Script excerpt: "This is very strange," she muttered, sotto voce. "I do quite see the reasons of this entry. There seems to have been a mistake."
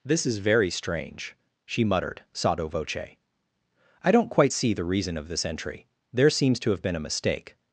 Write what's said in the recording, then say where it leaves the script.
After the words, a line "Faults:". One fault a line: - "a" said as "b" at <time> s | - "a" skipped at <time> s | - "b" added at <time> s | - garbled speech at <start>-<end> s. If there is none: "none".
"This is very strange," she muttered, sotto voce. "I don't quite see the reason of this entry. There seems to have been a mistake."
Faults:
- "do" said as "don't" at 4.1 s
- "reasons" said as "reason" at 4.8 s